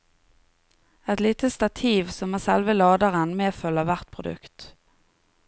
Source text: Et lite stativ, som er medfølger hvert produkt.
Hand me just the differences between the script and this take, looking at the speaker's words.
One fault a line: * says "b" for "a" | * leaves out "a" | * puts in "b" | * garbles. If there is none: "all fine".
* puts in "selve laderen"